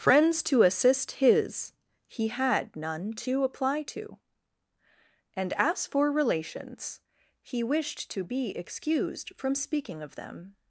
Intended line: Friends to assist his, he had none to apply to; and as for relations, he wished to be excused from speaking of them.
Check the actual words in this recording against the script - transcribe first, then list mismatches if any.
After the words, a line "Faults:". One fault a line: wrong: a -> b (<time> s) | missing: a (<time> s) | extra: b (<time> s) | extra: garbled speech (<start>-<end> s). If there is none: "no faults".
Friends to assist his, he had none to apply to; and as for relations, he wished to be excused from speaking of them.
Faults:
no faults